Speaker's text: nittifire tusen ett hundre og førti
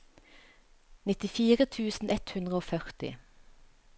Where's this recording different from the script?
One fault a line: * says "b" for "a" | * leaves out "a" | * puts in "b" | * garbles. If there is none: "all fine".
all fine